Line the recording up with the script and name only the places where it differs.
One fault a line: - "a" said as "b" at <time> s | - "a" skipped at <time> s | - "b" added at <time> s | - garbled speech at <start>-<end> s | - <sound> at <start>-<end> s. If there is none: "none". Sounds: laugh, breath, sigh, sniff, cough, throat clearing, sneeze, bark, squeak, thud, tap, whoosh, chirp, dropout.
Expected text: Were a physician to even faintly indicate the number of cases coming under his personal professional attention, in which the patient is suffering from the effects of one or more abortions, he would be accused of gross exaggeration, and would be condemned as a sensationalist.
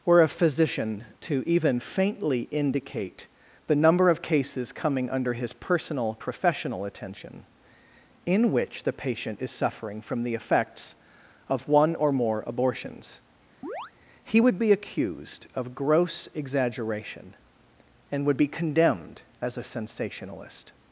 - chirp at 13.6-13.9 s